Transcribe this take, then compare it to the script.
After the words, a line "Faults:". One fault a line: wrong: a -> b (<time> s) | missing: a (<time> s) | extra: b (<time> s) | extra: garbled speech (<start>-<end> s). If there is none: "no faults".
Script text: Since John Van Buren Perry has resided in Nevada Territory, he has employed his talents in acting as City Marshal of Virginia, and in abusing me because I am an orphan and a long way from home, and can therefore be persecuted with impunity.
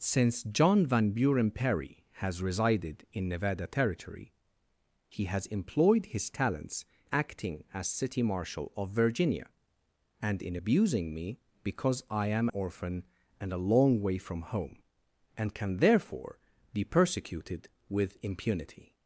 Since John Van Buren Perry has resided in Nevada Territory, he has employed his talents acting as City Marshal of Virginia, and in abusing me because I am orphan and a long way from home, and can therefore be persecuted with impunity.
Faults:
missing: in (6.8 s)
missing: an (12.5 s)